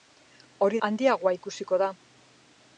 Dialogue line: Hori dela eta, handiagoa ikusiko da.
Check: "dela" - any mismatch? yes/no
yes